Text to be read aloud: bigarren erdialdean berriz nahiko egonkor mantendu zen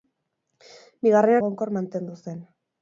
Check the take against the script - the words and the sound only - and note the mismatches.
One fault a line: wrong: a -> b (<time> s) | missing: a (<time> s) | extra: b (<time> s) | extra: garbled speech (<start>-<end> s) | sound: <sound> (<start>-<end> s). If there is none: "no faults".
missing: erdialdean berriz nahiko (1.4 s)